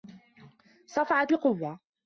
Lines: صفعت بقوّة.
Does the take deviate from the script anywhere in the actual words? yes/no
no